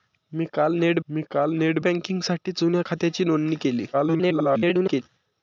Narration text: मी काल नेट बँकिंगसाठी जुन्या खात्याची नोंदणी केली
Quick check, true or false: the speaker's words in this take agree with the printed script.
false